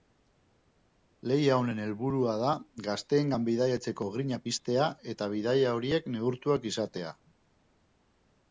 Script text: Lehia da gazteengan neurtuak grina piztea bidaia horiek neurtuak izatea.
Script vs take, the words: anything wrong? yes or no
yes